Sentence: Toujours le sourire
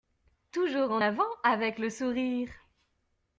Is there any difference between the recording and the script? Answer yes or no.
yes